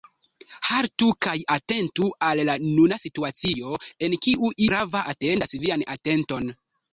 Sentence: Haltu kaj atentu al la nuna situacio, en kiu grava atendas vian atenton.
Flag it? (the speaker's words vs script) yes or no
no